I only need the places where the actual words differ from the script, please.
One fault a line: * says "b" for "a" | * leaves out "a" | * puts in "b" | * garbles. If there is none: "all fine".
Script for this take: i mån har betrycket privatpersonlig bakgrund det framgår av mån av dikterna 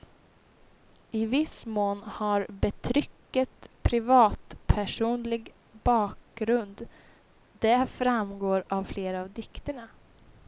* puts in "viss"
* says "flera" for "mån"